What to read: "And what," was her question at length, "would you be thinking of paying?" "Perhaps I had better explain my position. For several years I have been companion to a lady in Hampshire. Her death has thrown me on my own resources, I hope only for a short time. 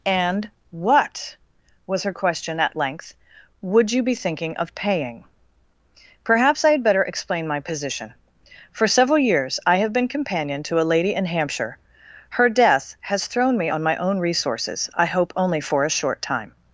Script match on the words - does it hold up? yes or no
yes